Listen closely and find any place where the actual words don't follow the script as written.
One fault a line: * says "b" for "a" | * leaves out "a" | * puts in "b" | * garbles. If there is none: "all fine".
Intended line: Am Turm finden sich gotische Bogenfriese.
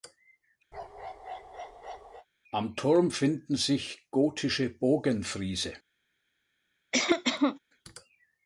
all fine